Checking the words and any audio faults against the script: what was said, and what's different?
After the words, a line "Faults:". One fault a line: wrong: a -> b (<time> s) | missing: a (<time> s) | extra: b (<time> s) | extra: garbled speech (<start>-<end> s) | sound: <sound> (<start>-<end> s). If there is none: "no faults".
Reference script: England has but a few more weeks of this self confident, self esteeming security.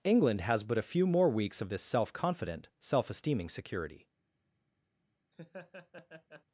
England has but a few more weeks of this self confident, self esteeming security.
Faults:
sound: laugh (5.3-6.4 s)